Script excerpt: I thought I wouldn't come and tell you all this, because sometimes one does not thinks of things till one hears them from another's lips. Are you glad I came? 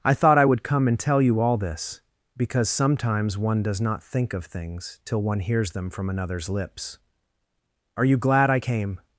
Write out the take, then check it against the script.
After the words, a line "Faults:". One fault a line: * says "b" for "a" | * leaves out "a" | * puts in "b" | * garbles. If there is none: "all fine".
I thought I would come and tell you all this, because sometimes one does not think of things till one hears them from another's lips. Are you glad I came?
Faults:
* says "would" for "wouldn't"
* says "think" for "thinks"